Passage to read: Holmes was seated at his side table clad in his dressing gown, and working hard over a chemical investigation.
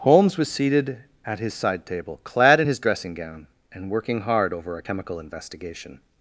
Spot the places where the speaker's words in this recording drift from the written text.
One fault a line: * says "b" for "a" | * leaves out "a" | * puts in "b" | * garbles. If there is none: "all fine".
all fine